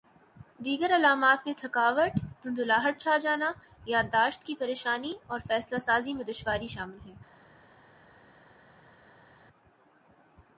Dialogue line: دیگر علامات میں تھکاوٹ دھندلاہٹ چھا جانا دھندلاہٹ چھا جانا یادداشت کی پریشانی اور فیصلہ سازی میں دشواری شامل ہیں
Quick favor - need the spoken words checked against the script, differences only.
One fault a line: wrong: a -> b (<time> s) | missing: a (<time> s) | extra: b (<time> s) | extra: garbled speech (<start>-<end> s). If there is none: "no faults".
missing: دھندلاہٹ چھا جانا (3.5 s)